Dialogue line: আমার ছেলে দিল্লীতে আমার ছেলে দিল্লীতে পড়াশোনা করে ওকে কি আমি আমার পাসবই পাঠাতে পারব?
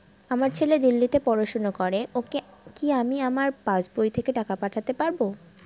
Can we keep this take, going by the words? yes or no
no